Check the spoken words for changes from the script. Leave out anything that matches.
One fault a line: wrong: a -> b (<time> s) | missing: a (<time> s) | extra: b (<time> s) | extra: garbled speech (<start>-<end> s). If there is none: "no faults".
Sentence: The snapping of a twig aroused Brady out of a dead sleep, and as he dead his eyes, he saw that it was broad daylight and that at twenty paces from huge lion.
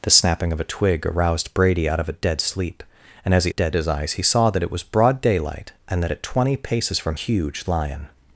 no faults